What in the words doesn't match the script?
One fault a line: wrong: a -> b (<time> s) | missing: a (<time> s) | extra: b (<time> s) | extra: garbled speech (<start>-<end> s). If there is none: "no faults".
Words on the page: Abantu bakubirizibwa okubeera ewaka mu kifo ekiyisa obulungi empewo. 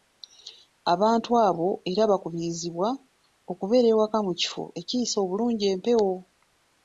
extra: abo era (1.5 s)